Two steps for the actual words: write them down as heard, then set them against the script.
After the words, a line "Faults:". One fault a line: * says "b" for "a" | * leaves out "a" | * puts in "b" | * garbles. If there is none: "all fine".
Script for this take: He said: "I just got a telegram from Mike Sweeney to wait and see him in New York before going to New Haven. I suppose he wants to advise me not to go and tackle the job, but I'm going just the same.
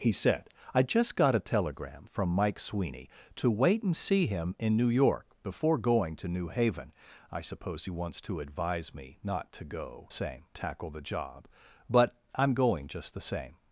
He said: "I just got a telegram from Mike Sweeney to wait and see him in New York before going to New Haven. I suppose he wants to advise me not to go same tackle the job, but I'm going just the same.
Faults:
* says "same" for "and"